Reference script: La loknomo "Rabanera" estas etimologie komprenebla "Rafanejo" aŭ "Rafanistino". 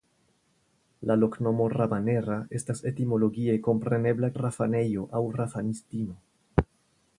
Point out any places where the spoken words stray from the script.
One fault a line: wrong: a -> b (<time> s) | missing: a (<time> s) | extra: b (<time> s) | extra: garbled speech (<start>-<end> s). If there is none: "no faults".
no faults